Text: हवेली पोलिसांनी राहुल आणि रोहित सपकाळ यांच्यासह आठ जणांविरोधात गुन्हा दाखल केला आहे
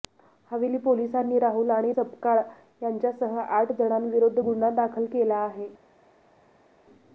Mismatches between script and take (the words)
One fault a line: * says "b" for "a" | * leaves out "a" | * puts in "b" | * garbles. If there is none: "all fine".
* leaves out "रोहित"